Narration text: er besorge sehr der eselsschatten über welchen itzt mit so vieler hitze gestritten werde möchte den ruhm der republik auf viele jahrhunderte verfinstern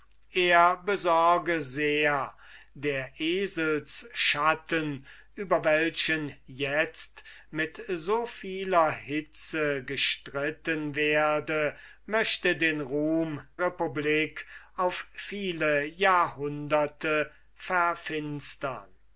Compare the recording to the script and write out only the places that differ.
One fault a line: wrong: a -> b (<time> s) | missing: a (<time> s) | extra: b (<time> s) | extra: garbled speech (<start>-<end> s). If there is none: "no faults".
missing: der (13.4 s)